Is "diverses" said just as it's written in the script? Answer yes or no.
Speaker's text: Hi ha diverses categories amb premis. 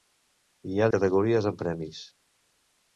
no